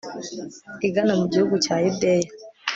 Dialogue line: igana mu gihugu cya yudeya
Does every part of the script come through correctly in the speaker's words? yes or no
yes